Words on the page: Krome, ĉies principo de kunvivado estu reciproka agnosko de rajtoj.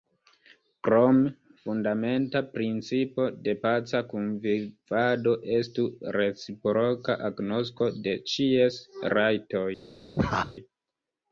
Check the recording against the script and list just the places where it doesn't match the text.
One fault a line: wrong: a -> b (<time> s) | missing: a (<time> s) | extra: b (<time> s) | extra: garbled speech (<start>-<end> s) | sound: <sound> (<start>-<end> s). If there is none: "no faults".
wrong: ĉies -> fundamenta (1.6 s)
extra: paca (3.6 s)
extra: ĉies (8.3 s)
sound: laugh (10.2-10.5 s)